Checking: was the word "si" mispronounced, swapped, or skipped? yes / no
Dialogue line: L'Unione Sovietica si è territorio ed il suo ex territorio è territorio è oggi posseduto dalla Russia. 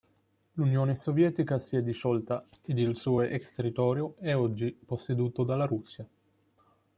no